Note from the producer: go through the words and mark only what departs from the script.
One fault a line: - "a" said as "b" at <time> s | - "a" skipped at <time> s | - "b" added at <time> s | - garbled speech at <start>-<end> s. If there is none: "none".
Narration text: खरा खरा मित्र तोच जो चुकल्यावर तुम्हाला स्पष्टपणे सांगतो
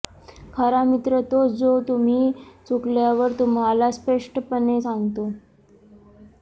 - "खरा" skipped at 0.8 s
- "तुम्ही" added at 1.9 s